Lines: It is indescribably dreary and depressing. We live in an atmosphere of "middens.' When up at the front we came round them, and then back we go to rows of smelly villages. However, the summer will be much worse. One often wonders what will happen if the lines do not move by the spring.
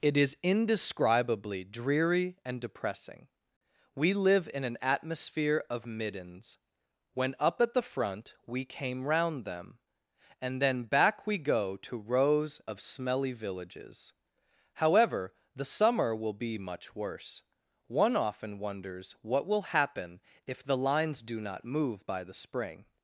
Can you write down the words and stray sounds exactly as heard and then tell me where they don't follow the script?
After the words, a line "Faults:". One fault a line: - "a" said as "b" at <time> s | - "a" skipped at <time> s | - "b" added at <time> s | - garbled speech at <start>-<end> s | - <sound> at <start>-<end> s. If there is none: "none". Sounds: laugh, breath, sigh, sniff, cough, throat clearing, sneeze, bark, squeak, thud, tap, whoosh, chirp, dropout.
It is indescribably dreary and depressing. We live in an atmosphere of "middens.' When up at the front we came round them, and then back we go to rows of smelly villages. However, the summer will be much worse. One often wonders what will happen if the lines do not move by the spring.
Faults:
none